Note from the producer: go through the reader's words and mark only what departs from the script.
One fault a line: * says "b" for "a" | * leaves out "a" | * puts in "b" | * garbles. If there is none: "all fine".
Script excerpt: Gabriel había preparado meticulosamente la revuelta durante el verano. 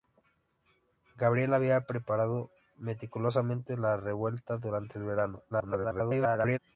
* garbles